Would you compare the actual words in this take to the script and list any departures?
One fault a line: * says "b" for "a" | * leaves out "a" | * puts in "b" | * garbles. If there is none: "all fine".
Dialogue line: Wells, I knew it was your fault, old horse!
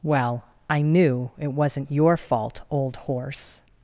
* says "Well" for "Wells"
* says "wasn't" for "was"